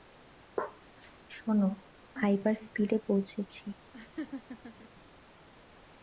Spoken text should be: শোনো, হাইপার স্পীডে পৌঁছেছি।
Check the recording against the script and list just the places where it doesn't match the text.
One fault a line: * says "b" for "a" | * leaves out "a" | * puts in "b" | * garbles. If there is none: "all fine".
all fine